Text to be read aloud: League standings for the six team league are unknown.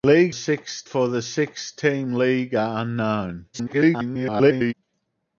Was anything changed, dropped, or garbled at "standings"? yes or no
yes